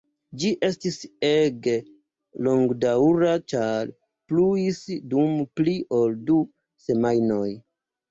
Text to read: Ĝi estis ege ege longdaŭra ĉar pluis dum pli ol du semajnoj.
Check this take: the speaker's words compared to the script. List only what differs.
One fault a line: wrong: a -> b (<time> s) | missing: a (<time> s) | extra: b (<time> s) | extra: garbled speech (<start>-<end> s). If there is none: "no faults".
missing: ege (1.7 s)